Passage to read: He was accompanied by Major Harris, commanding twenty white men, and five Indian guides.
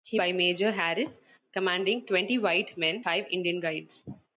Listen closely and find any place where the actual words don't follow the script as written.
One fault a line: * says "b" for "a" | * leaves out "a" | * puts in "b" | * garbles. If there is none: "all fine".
* leaves out "was accompanied"
* leaves out "and"